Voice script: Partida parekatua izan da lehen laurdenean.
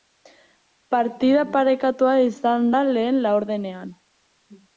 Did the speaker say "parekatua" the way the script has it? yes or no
yes